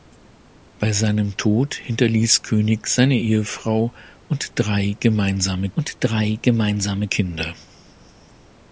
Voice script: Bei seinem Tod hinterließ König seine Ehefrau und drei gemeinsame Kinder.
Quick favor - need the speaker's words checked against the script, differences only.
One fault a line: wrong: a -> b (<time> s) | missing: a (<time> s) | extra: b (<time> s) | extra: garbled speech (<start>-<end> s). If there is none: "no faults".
extra: und drei gemeinsame (5.8 s)